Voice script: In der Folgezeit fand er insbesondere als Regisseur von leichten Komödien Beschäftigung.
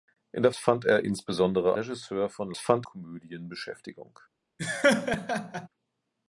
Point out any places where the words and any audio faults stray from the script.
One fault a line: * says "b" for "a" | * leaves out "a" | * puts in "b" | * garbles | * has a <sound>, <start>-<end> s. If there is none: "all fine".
* leaves out "Folgezeit"
* leaves out "als"
* says "fand" for "leichten"
* has a laugh, 4.6-5.7 s